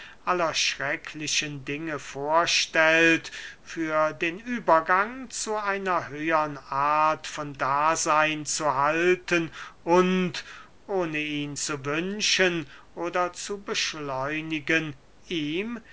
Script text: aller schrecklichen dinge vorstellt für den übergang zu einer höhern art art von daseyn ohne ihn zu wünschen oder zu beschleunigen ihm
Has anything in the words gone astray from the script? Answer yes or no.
yes